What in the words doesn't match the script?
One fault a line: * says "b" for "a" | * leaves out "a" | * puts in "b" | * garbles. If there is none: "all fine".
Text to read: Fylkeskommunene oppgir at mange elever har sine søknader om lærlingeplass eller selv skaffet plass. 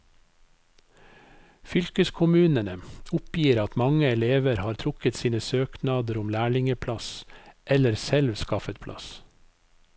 * puts in "trukket"